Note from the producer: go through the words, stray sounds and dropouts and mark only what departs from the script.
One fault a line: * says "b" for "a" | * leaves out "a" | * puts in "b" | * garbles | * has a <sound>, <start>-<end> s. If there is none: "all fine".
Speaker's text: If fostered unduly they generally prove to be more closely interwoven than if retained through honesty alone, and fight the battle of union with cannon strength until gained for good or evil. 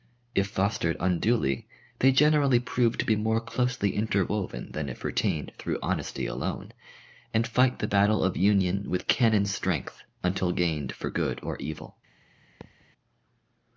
* has a thud, 12.6-12.9 s